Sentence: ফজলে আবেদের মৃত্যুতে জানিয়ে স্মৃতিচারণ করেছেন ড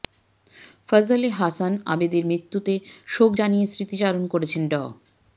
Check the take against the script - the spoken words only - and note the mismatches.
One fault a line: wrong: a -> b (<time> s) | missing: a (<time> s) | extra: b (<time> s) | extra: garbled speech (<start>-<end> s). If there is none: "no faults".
extra: হাসান (1.4 s)
extra: শোক (3.1 s)